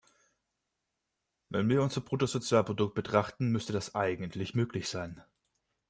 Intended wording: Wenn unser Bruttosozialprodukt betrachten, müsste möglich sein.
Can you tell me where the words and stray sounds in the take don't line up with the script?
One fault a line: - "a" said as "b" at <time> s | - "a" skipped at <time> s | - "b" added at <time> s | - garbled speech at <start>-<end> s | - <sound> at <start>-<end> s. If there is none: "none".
- "wir" added at 1.7 s
- "das eigentlich" added at 3.7 s